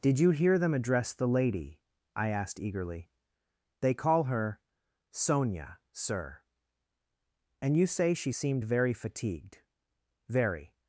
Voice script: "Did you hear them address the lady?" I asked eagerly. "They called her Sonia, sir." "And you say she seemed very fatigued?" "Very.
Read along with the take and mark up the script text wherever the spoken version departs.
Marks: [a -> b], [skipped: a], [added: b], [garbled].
"Did you hear them address the lady?" I asked eagerly. "They [called -> call] her Sonia, sir." "And you say she seemed very fatigued?" "Very.